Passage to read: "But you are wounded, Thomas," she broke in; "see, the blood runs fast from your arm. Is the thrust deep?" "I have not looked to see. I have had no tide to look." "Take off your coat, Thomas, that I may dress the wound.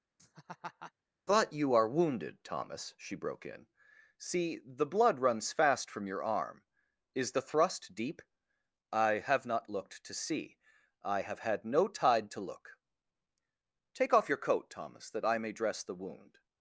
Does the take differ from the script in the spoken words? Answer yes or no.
no